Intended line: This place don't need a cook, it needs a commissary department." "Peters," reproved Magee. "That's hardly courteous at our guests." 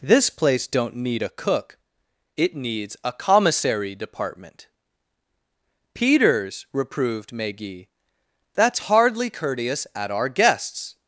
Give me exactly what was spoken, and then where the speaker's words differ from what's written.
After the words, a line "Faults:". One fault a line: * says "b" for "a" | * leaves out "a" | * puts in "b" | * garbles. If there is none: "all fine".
This place don't need a cook, it needs a commissary department." "Peters," reproved Magee. "That's hardly courteous at our guests."
Faults:
all fine